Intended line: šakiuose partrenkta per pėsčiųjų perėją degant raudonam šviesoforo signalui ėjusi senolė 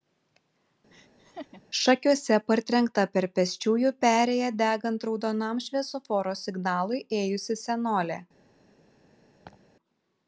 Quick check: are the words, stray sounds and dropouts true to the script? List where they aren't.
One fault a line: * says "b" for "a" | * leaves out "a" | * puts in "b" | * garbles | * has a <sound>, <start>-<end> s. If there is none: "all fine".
* has a laugh, 0.9-1.6 s
* has a laugh, 9.4-9.6 s